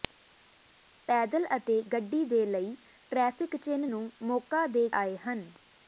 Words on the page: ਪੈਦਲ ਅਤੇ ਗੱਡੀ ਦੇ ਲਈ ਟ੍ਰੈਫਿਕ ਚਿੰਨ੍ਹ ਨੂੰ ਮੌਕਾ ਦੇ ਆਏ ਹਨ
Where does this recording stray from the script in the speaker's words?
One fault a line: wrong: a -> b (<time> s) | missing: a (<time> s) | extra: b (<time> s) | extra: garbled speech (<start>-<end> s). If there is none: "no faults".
no faults